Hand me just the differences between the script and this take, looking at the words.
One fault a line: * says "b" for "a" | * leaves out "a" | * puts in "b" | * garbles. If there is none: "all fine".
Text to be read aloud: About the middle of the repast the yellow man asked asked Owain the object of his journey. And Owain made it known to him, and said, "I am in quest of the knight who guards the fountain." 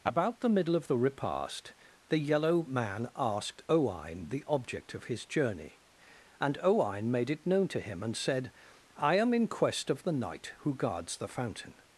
* leaves out "asked"